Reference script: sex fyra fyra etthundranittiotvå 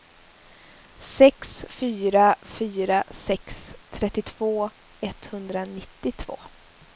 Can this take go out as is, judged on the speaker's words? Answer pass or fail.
fail